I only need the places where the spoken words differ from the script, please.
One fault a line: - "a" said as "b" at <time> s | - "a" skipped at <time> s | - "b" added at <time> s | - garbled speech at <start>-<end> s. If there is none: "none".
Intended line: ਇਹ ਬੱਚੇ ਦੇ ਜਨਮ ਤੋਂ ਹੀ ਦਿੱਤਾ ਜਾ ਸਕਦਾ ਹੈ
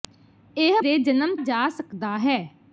- "ਬੱਚੇ" skipped at 0.8 s
- "ਤੋਂ ਹੀ ਦਿੱਤਾ" skipped at 1.4 s